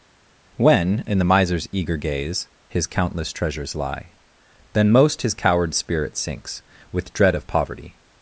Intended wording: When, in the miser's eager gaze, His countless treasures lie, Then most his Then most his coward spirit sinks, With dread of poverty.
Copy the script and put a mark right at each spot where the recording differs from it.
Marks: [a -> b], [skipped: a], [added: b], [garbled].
When, in the miser's eager gaze, His countless treasures lie, Then most his [skipped: Then most his] coward spirit sinks, With dread of poverty.